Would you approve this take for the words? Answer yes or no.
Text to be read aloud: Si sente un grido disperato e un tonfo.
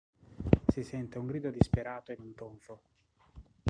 yes